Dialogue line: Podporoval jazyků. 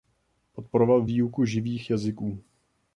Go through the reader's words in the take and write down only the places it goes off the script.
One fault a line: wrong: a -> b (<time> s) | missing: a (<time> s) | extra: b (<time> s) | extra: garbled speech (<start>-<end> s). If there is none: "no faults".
extra: výuku živých (1.0 s)